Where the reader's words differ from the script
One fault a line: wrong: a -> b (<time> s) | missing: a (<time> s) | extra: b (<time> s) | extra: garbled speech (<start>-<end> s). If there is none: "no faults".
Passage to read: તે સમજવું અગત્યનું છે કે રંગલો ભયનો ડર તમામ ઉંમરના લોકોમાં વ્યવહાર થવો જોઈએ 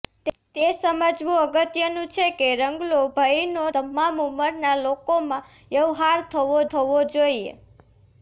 missing: ડર (3.6 s)
extra: થવો (6.7 s)